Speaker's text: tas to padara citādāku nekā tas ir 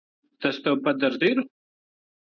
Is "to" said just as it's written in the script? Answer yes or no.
yes